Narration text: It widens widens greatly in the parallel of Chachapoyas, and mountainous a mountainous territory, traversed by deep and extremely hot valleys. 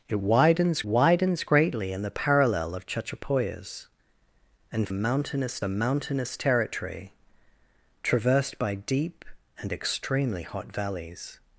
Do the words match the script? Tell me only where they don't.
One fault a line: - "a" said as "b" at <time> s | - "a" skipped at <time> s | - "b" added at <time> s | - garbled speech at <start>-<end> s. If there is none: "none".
none